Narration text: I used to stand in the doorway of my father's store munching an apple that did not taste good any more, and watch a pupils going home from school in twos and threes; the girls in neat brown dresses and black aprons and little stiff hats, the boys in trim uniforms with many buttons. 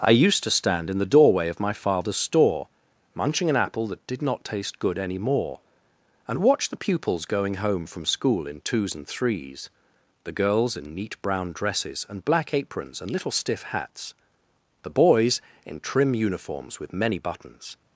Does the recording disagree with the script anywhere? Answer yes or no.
yes